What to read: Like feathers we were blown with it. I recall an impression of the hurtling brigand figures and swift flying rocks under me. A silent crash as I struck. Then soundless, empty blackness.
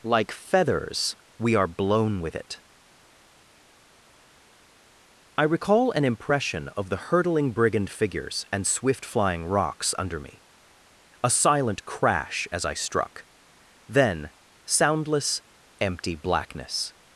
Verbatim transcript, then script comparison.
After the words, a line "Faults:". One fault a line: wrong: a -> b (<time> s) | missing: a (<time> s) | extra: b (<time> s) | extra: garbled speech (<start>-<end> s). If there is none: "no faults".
Like feathers we are blown with it. I recall an impression of the hurtling brigand figures and swift flying rocks under me. A silent crash as I struck. Then soundless, empty blackness.
Faults:
wrong: were -> are (1.5 s)